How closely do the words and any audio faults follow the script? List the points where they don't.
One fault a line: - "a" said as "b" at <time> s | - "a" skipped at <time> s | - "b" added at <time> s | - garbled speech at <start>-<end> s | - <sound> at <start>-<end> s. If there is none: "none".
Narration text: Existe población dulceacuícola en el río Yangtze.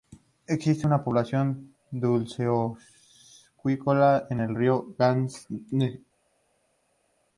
- "una" added at 0.9 s